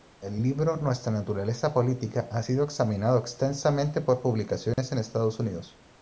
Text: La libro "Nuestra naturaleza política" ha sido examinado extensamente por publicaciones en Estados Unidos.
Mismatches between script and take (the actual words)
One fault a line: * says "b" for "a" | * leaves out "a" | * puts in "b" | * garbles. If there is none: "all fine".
* says "El" for "La"